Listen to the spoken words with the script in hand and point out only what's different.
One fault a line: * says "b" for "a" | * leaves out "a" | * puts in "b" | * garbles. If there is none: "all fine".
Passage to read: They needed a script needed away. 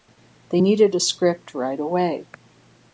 * says "right" for "needed"